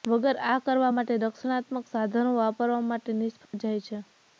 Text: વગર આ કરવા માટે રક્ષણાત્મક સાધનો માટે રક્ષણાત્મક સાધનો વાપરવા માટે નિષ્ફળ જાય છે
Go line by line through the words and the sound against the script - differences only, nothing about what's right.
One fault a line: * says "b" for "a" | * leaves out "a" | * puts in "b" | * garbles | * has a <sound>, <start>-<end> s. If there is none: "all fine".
* leaves out "માટે રક્ષણાત્મક સાધનો"
* has a dropout, 3.5-3.5 s